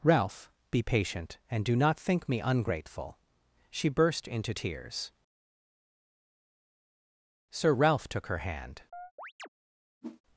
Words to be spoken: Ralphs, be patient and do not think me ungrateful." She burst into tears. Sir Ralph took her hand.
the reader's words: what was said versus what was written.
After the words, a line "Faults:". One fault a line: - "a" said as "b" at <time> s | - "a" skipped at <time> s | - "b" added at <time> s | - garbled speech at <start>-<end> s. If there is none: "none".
Ralph, be patient and do not think me ungrateful." She burst into tears. Sir Ralph took her hand.
Faults:
- "Ralphs" said as "Ralph" at 0.0 s